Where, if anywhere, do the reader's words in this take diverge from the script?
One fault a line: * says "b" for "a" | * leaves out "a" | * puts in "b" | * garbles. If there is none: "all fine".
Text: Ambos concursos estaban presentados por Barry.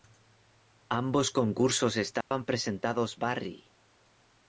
* leaves out "por"